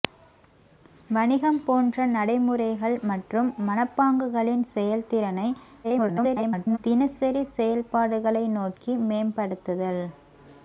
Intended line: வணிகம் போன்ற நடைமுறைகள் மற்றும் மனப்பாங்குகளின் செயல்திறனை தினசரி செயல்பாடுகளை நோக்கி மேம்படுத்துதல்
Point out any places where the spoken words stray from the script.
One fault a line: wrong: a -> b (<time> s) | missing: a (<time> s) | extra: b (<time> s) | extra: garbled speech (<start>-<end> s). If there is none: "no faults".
extra: garbled speech (5.8-6.8 s)